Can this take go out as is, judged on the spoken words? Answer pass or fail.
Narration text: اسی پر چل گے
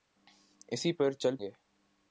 pass